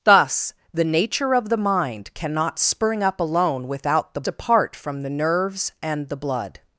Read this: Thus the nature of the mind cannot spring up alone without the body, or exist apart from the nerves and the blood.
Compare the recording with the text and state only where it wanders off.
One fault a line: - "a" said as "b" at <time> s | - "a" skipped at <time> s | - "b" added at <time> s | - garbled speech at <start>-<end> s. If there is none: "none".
- "body or exist" skipped at 4.2 s